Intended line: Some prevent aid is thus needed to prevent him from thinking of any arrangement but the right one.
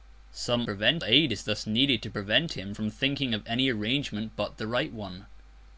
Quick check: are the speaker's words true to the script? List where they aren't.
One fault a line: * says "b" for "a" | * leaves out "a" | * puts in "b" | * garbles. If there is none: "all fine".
all fine